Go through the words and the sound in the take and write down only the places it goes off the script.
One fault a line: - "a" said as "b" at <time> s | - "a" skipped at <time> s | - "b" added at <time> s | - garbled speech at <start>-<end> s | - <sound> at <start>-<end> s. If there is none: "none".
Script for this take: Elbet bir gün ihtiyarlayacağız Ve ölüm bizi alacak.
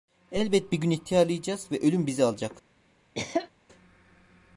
- cough at 3.1-3.5 s